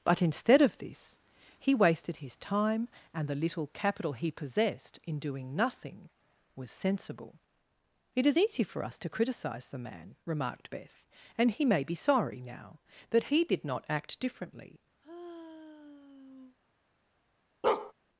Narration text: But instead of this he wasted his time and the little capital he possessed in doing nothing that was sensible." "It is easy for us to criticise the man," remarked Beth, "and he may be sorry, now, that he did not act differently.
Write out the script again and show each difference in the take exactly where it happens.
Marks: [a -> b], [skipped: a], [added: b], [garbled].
But instead of this he wasted his time and the little capital he possessed in doing nothing [skipped: that] was sensible." "It is easy for us to criticise the man," remarked Beth, "and he may be sorry, now, that he did not act differently.